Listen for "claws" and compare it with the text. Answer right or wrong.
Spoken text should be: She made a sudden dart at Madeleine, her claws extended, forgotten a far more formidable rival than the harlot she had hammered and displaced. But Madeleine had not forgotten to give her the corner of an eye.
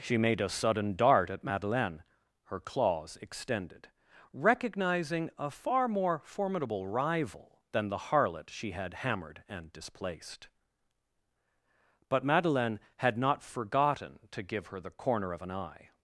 right